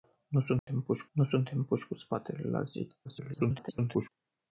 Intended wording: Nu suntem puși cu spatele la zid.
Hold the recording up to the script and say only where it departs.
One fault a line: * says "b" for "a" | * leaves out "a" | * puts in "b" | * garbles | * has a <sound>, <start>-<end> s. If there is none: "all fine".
* has a dropout, 0.6-0.7 s
* puts in "nu suntem puși"
* garbles